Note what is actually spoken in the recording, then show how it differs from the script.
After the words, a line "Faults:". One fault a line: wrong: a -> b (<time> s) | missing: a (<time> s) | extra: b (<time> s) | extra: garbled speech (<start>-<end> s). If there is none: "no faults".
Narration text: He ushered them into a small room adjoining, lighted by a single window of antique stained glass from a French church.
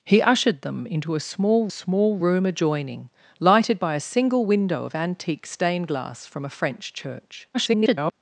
He ushered them into a small small room adjoining, lighted by a single window of antique stained glass from a French church. [garbled]
Faults:
extra: small (1.7 s)
extra: garbled speech (7.5-8.1 s)